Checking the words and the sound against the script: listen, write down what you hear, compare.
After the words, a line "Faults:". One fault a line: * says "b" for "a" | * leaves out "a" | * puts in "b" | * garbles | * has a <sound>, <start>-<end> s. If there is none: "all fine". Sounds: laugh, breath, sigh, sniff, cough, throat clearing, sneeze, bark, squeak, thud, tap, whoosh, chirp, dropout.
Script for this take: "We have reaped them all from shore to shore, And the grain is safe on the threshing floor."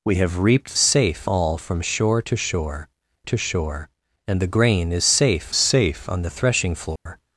"We have reaped safe all from shore to shore to shore, And the grain is safe safe on the threshing floor."
Faults:
* says "safe" for "them"
* puts in "to shore"
* puts in "safe"
* has a dropout, 7.0-7.1 s